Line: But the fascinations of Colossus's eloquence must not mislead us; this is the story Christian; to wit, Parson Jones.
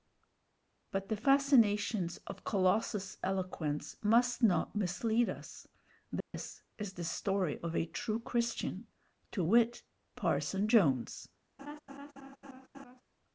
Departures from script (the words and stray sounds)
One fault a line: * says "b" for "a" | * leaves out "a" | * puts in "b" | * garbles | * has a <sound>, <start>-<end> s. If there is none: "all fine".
* has a dropout, 6.2-6.3 s
* puts in "of a true"
* has a laugh, 11.6-13.0 s